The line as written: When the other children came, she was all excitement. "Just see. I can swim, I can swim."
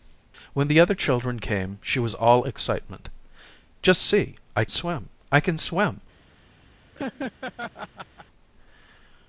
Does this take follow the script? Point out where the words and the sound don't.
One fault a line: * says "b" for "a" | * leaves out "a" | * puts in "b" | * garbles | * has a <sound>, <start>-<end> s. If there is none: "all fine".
* leaves out "can"
* has a laugh, 6.9-8.3 s